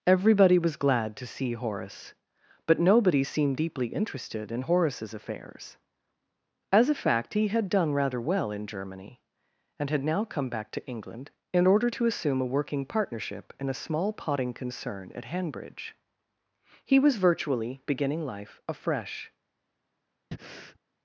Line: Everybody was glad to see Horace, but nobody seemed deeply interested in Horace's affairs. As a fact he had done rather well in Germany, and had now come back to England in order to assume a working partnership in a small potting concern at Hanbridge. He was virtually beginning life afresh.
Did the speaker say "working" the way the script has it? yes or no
yes